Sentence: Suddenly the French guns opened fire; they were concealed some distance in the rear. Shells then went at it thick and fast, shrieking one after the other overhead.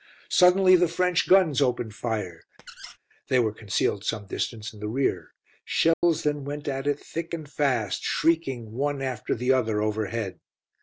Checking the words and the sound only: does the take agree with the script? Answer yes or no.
no